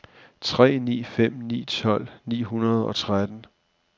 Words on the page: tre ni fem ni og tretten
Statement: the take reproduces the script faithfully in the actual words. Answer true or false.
false